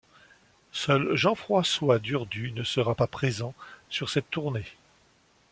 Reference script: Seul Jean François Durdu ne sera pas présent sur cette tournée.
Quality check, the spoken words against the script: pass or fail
pass